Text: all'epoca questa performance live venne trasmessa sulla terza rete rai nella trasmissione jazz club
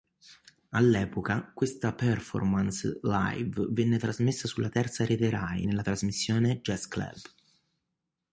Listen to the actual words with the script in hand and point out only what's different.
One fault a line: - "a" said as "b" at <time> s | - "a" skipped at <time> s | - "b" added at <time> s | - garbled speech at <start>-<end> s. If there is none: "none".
none